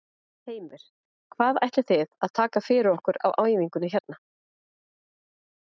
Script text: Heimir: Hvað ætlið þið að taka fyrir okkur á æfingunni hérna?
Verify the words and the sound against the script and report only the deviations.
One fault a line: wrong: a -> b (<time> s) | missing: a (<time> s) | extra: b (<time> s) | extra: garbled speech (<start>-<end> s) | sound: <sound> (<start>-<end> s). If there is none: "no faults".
no faults